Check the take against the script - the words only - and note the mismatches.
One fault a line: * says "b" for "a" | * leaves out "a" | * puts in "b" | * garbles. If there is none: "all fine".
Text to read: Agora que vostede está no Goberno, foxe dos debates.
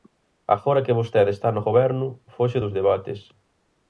all fine